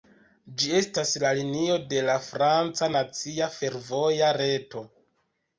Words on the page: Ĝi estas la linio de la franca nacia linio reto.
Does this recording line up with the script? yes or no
no